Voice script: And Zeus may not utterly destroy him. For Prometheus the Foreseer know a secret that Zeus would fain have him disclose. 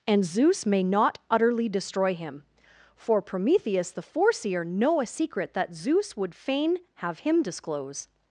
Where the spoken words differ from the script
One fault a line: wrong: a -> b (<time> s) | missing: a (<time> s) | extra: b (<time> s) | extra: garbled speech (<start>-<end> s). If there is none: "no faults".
no faults